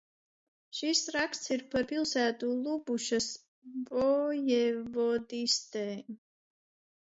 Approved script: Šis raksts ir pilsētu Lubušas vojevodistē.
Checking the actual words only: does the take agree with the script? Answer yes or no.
no